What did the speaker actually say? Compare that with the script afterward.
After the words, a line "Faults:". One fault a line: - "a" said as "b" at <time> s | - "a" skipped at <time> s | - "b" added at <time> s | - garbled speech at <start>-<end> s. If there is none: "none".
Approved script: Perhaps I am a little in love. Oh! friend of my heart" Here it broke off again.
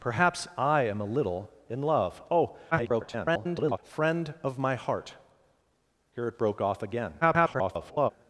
Perhaps I am a little in love. Oh! [garbled] friend of my heart" Here it broke off again. [garbled]
Faults:
- garbled speech at 2.7-3.8 s
- garbled speech at 7.2-8.1 s